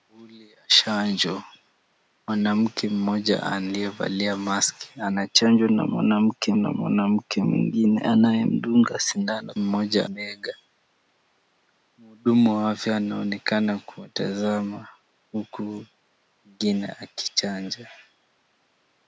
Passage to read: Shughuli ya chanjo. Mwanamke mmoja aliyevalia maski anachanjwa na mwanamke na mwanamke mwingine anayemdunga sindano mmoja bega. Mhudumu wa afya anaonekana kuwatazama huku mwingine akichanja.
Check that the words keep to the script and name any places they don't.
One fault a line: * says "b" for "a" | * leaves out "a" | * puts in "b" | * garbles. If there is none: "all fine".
all fine